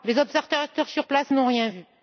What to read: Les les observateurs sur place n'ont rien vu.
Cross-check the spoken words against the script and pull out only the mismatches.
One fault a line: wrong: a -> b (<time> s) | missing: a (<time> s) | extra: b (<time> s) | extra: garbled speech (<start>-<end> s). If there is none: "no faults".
missing: les (0.2 s)